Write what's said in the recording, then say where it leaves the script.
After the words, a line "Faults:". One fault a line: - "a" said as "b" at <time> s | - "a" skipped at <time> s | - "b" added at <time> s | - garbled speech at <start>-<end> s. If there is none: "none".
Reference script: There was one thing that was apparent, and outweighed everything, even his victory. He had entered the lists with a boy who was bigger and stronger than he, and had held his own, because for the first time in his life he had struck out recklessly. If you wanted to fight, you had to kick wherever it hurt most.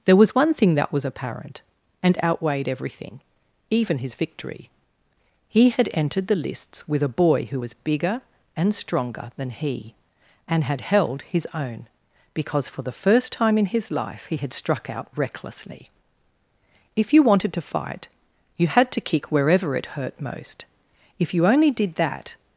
There was one thing that was apparent, and outweighed everything, even his victory. He had entered the lists with a boy who was bigger and stronger than he, and had held his own, because for the first time in his life he had struck out recklessly. If you wanted to fight, you had to kick wherever it hurt most. If you only did that
Faults:
- "If you only did that" added at 21.2 s